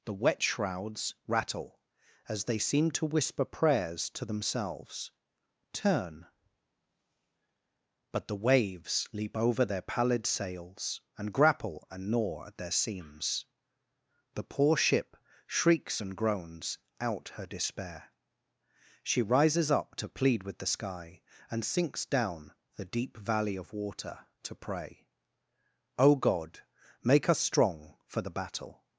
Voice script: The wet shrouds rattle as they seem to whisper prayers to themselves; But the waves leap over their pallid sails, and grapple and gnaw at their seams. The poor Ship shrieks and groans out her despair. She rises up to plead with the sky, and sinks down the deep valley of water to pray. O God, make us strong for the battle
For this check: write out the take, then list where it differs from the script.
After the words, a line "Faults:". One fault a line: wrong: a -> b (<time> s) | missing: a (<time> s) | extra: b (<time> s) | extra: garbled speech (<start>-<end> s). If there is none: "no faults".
The wet shrouds rattle as they seem to whisper prayers to themselves; turn But the waves leap over their pallid sails, and grapple and gnaw at their seams. The poor Ship shrieks and groans out her despair. She rises up to plead with the sky, and sinks down the deep valley of water to pray. O God, make us strong for the battle
Faults:
extra: turn (5.7 s)